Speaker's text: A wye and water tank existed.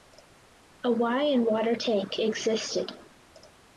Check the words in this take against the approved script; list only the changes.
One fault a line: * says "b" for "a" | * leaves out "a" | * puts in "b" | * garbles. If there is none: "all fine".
all fine